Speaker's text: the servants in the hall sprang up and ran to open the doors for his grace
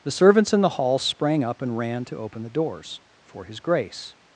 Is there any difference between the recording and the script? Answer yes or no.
no